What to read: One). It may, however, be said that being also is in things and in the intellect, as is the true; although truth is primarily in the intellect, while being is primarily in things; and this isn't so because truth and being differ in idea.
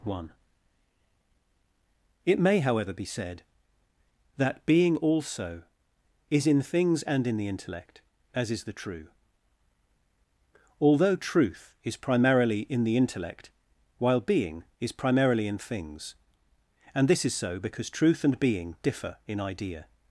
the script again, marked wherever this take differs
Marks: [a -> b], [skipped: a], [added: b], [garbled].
One). It may, however, be said that being also is in things and in the intellect, as is the true; although truth is primarily in the intellect, while being is primarily in things; and this [isn't -> is] so because truth and being differ in idea.